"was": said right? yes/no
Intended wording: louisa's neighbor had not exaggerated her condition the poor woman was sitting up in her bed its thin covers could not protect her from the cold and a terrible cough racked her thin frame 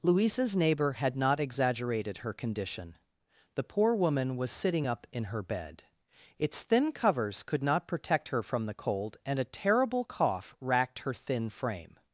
yes